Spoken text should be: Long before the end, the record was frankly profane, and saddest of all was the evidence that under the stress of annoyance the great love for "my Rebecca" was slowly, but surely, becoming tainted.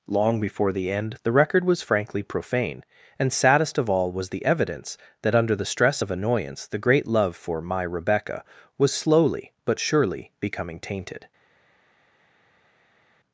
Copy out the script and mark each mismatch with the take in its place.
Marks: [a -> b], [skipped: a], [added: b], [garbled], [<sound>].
Long before the end, the record was frankly profane, and saddest of all was the evidence that under the stress of annoyance the great love for "my Rebecca" was slowly, but surely, becoming tainted.